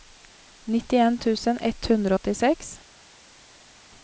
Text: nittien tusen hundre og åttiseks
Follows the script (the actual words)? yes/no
no